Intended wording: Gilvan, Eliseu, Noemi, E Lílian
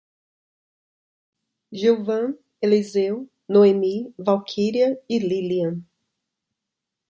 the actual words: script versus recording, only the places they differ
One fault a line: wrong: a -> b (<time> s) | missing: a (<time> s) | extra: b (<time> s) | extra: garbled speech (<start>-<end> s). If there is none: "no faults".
extra: Valquíria (4.2 s)